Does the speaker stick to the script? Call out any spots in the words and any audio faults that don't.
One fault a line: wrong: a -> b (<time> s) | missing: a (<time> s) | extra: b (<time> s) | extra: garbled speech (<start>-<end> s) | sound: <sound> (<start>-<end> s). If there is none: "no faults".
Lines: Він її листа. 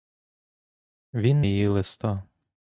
no faults